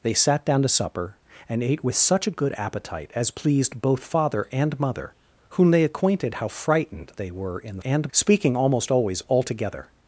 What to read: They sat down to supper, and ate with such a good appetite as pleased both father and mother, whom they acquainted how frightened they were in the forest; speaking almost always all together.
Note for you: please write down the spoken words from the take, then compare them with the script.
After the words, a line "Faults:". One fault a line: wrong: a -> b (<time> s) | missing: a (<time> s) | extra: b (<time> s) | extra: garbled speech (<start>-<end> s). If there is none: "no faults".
They sat down to supper, and ate with such a good appetite as pleased both father and mother, whom they acquainted how frightened they were in the and; speaking almost always all together.
Faults:
wrong: forest -> and (7.8 s)